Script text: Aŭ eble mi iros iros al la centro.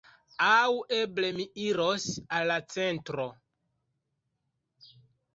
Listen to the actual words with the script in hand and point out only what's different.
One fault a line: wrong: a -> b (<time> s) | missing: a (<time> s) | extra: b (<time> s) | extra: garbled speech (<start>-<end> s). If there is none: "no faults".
missing: iros (2.0 s)